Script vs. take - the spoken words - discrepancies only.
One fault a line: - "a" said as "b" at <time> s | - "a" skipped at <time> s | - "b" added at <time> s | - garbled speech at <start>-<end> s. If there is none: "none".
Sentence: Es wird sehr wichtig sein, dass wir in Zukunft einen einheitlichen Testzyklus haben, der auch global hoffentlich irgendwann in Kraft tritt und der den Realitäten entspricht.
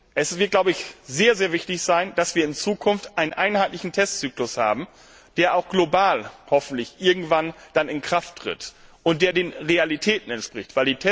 none